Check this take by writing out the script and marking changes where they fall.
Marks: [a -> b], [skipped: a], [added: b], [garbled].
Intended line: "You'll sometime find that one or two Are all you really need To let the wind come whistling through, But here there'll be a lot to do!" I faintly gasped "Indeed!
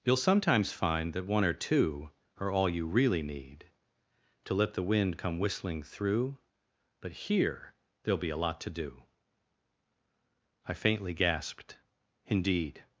"You'll [sometime -> sometimes] find that one or two Are all you really need To let the wind come whistling through, But here there'll be a lot to do!" I faintly gasped "Indeed!